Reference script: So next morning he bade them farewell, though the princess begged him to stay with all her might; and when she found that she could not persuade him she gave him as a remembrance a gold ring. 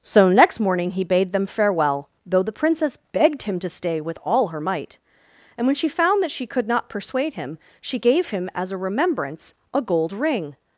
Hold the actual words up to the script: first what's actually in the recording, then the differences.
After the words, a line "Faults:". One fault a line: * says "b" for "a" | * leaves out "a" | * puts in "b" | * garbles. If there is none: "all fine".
So next morning he bade them farewell, though the princess begged him to stay with all her might; and when she found that she could not persuade him she gave him as a remembrance a gold ring.
Faults:
all fine